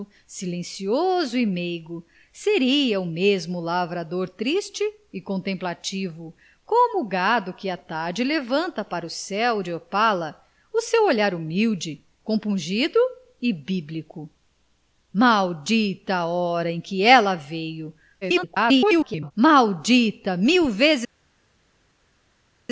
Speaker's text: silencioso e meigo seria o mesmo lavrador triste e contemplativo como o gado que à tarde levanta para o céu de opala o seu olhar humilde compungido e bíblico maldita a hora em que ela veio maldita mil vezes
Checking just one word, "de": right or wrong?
right